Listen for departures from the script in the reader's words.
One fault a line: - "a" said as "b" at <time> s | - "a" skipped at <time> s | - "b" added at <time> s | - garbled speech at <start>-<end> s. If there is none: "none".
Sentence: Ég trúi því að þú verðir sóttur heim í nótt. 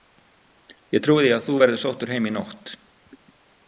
none